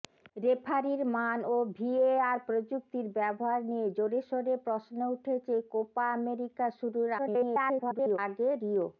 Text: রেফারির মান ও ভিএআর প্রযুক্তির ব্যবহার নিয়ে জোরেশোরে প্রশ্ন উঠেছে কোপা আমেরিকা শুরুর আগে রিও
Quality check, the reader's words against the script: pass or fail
fail